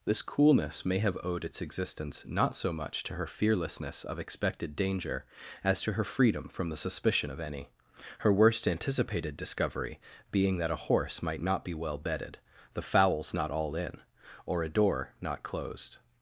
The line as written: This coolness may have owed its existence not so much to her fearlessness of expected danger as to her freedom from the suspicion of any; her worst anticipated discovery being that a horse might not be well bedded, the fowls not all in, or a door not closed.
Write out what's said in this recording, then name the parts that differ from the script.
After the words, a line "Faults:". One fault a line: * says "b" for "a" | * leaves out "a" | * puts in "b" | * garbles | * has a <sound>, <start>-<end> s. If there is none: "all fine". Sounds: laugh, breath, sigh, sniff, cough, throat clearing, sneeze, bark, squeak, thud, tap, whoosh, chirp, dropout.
This coolness may have owed its existence not so much to her fearlessness of expected danger as to her freedom from the suspicion of any; her worst anticipated discovery being that a horse might not be well bedded, the fowls not all in, or a door not closed.
Faults:
all fine